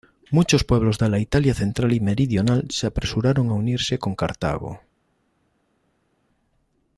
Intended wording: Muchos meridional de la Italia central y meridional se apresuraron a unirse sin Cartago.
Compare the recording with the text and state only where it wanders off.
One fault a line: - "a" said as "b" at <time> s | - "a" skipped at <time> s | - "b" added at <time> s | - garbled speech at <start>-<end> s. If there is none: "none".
- "meridional" said as "pueblos" at 0.6 s
- "sin" said as "con" at 4.0 s